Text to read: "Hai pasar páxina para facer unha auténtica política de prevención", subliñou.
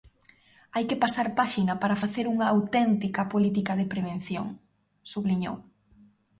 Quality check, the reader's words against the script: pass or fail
fail